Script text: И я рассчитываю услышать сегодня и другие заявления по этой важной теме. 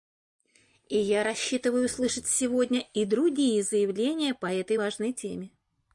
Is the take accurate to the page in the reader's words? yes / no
yes